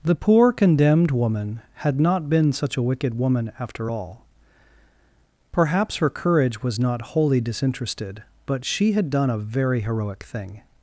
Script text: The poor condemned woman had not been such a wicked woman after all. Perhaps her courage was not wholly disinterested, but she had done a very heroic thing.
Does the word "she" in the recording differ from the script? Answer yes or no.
no